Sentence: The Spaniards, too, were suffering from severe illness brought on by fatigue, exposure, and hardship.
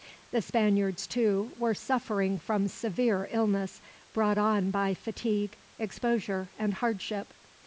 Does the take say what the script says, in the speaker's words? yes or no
yes